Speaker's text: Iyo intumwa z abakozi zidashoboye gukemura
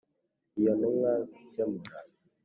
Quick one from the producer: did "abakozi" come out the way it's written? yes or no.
no